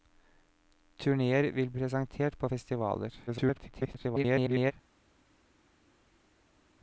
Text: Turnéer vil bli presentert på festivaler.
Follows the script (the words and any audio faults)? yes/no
no